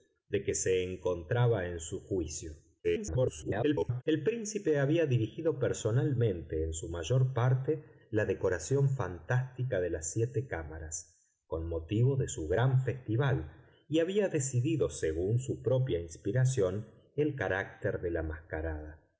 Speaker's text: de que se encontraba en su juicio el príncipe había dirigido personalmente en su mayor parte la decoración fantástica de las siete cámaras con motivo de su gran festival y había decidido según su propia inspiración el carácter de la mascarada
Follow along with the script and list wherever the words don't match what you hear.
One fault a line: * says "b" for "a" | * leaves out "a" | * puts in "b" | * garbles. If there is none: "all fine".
* garbles